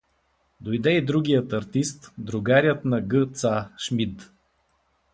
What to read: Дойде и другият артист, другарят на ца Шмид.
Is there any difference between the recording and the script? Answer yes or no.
yes